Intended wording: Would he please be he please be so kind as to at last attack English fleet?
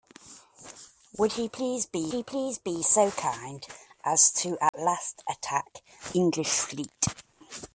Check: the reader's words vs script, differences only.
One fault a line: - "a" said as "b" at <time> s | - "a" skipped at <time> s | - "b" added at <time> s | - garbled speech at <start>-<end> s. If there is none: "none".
none